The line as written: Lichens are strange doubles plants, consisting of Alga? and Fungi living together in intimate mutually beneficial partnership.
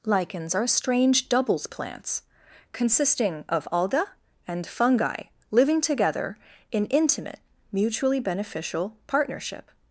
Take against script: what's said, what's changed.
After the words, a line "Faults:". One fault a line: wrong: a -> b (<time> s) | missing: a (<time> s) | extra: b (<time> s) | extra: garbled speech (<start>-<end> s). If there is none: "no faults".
Lichens are strange doubles plants, consisting of Alga? and Fungi living together in intimate mutually beneficial partnership.
Faults:
no faults